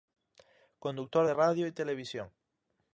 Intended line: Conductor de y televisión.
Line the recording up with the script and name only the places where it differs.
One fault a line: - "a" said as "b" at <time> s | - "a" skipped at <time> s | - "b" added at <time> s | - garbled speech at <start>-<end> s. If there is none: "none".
- "radio" added at 1.3 s